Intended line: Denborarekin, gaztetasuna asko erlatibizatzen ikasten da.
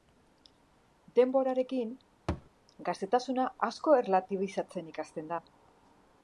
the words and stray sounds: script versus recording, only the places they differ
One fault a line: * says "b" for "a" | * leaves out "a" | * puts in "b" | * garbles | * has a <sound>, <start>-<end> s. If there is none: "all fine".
* has a thud, 2.3-2.5 s